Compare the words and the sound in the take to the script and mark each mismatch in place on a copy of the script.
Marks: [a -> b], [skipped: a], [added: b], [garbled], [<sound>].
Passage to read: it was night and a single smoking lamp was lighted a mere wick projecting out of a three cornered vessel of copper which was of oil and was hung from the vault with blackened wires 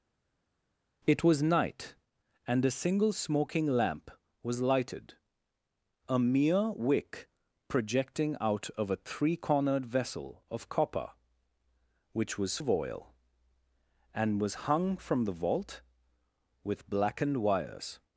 it was night and a single smoking lamp was lighted a mere wick projecting out of a three cornered vessel of copper which was of oil and was hung from the vault with blackened wires